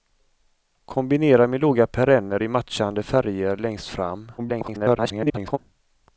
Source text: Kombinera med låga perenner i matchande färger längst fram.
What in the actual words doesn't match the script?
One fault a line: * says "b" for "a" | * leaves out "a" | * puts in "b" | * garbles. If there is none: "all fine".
* garbles